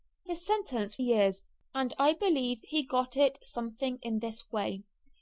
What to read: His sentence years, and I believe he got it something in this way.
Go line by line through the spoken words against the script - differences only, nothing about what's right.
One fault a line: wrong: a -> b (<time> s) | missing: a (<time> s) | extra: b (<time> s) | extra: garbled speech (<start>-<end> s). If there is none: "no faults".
no faults